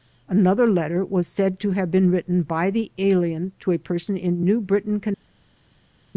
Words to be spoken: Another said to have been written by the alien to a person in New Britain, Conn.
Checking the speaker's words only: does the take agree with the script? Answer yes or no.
no